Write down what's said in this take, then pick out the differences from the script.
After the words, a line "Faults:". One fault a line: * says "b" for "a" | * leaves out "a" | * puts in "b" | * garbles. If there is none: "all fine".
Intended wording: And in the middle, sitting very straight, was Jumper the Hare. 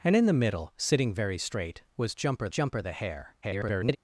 And in the middle, sitting very straight, was Jumper Jumper the Hare. [garbled]
Faults:
* puts in "Jumper"
* garbles